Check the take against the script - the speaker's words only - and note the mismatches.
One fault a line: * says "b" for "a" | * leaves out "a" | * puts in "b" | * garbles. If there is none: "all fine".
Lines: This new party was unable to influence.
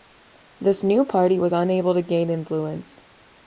* puts in "gain"